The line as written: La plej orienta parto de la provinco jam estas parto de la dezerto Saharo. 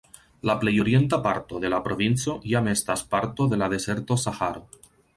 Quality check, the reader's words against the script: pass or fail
pass